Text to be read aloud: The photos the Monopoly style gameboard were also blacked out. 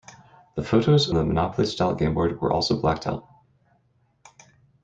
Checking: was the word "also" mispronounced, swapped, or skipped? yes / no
no